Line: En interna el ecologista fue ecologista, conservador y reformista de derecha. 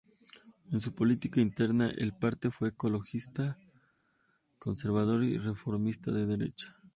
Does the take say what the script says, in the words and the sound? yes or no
no